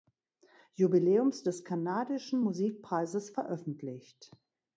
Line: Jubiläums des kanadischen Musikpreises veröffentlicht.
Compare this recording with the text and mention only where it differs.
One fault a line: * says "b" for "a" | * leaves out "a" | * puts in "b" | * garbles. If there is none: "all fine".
all fine